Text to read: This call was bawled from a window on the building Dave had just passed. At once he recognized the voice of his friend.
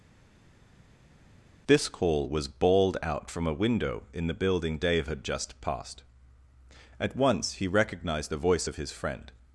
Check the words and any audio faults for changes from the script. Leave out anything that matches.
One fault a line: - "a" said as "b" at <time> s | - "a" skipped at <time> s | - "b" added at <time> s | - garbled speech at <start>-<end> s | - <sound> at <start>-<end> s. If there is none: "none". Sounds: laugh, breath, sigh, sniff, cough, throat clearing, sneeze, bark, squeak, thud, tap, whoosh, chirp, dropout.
- "out" added at 3.0 s
- "on" said as "in" at 4.1 s